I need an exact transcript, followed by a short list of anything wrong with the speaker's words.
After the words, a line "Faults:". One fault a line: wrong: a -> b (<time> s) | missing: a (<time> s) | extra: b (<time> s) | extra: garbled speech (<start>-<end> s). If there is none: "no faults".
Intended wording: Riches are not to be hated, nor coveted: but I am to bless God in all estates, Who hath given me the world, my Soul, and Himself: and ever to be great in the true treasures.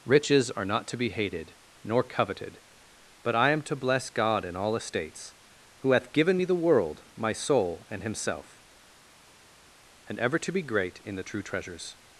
Riches are not to be hated, nor coveted: but I am to bless God in all estates, Who hath given me the world, my Soul, and Himself: and ever to be great in the true treasures.
Faults:
no faults